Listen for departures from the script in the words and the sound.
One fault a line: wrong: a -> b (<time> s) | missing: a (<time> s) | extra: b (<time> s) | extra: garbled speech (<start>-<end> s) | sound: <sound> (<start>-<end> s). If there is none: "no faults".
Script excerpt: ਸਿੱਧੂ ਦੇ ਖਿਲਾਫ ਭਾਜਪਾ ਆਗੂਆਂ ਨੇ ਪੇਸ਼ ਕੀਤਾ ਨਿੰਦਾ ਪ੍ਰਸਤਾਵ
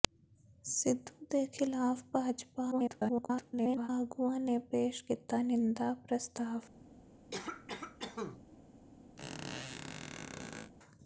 extra: garbled speech (2.7-3.9 s)
sound: cough (7.3-8.4 s)
sound: squeak (9.2-10.7 s)